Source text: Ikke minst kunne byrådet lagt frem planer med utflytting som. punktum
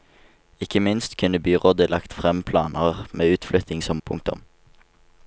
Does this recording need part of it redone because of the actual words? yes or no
no